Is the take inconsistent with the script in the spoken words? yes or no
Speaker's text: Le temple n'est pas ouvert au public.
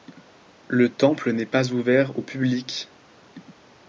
no